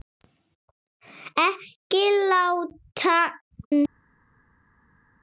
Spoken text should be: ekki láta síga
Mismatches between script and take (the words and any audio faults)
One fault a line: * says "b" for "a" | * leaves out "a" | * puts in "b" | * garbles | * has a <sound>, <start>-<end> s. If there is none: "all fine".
all fine